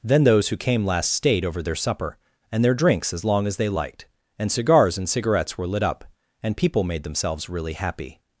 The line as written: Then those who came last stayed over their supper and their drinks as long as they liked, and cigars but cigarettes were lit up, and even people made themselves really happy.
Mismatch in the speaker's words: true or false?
true